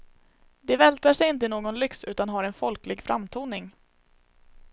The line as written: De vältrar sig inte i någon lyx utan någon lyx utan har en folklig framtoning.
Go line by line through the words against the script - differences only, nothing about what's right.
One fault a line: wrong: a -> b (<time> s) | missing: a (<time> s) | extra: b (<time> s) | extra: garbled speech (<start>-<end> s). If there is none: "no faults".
missing: någon lyx utan (2.3 s)